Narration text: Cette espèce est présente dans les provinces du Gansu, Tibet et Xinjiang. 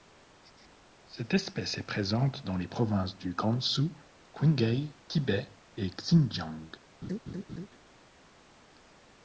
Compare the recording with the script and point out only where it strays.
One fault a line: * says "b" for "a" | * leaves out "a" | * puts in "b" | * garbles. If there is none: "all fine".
* puts in "Qinghai"